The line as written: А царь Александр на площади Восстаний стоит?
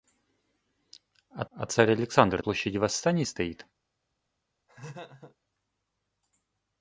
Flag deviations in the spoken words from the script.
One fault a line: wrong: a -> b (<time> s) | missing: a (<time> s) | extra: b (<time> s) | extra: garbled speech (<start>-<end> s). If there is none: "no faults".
extra: а (1.5 s)
missing: на (2.4 s)